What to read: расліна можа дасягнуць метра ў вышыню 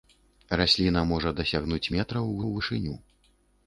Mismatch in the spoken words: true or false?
true